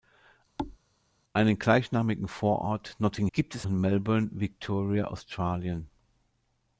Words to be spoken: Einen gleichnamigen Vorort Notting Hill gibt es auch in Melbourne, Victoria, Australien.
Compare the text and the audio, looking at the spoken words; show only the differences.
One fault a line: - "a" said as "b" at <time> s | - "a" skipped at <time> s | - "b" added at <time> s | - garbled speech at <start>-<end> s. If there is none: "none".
- "Hill" skipped at 3.3 s
- "auch" skipped at 3.7 s